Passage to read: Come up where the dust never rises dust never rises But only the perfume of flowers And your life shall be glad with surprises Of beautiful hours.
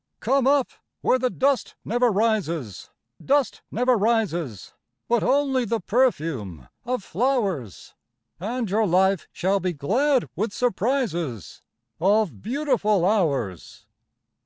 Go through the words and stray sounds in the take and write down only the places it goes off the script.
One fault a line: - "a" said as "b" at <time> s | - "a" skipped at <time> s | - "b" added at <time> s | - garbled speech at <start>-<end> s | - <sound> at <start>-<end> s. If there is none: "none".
none